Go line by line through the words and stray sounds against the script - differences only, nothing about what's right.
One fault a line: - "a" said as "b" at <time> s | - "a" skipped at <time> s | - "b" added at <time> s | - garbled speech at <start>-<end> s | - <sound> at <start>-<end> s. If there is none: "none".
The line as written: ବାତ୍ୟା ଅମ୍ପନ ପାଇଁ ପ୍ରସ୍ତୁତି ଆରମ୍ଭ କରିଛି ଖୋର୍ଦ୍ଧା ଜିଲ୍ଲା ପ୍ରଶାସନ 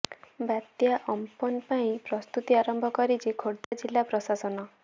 - dropout at 3.6-3.7 s